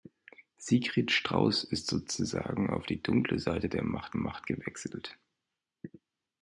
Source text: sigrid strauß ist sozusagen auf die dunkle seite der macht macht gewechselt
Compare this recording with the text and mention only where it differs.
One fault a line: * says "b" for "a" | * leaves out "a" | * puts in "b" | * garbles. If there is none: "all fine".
all fine